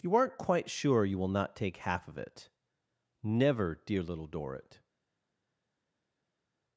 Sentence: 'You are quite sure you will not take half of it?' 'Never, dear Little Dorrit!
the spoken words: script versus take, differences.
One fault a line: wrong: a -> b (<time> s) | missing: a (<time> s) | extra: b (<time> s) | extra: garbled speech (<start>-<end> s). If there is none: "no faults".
wrong: are -> aren't (0.1 s)